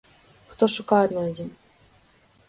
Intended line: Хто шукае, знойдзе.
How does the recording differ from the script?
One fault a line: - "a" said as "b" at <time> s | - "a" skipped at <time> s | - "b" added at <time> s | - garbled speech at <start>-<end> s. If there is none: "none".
none